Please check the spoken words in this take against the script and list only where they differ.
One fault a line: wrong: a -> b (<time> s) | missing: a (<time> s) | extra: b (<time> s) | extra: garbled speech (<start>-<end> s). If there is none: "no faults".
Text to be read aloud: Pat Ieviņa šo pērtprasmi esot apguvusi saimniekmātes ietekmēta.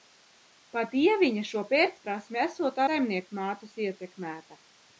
missing: apguvusi (2.8 s)